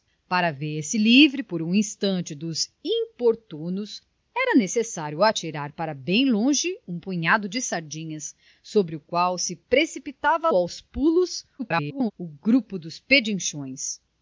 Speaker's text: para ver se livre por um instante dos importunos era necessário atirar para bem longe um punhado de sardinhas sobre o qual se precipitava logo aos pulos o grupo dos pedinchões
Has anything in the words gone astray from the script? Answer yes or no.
yes